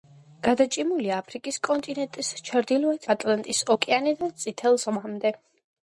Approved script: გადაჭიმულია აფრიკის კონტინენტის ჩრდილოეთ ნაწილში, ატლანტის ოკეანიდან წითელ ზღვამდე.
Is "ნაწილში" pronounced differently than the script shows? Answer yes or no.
yes